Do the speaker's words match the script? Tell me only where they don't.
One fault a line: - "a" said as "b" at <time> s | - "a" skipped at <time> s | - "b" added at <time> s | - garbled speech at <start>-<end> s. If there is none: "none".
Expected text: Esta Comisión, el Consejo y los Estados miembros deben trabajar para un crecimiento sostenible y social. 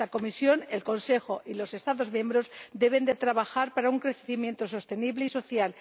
none